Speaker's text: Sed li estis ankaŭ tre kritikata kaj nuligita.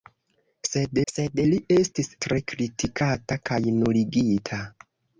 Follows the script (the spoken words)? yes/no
no